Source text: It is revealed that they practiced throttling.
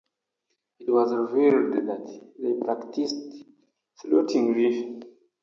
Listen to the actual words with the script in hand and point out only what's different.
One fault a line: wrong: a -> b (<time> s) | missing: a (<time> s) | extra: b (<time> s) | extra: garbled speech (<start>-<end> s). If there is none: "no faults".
wrong: is -> was (0.9 s)